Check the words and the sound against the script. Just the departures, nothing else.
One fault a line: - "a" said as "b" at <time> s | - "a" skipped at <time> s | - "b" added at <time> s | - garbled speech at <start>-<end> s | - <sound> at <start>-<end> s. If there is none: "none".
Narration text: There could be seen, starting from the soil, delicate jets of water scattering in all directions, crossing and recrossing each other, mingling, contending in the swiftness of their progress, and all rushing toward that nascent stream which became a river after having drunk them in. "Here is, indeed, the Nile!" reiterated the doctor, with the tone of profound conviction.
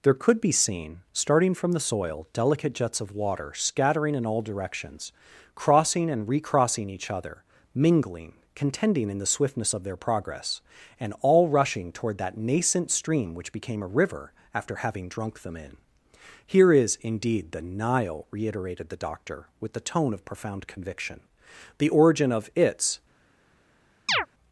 - "The origin of its" added at 21.8 s
- chirp at 24.1-24.3 s